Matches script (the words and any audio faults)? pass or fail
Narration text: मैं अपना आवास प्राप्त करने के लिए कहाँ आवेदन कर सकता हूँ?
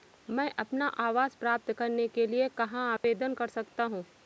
fail